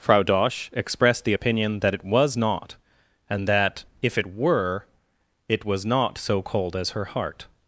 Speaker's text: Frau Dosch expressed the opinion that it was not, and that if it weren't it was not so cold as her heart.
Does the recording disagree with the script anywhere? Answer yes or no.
yes